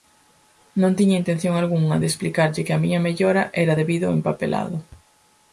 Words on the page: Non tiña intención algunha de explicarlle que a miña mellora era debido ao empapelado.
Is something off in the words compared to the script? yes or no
no